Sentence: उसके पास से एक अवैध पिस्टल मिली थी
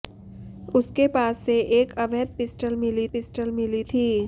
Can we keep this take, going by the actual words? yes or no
no